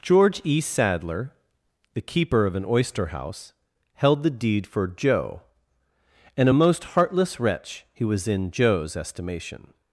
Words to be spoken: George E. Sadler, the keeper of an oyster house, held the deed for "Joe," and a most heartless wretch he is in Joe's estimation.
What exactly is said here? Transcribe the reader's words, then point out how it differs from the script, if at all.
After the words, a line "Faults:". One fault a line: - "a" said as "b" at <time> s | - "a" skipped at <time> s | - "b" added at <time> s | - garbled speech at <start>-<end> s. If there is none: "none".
George E. Sadler, the keeper of an oyster house, held the deed for "Joe," and a most heartless wretch he was in Joe's estimation.
Faults:
- "is" said as "was" at 8.0 s